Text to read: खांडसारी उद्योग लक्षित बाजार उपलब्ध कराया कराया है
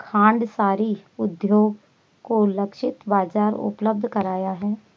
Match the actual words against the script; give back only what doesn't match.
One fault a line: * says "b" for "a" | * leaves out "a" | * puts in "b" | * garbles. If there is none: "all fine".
* puts in "को"
* leaves out "कराया"